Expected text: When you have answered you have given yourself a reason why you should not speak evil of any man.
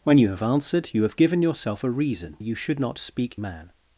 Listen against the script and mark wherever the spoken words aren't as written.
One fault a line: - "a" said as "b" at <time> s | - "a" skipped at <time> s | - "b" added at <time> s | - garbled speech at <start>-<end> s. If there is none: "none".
- "why" skipped at 2.4 s
- "evil of any" skipped at 3.4 s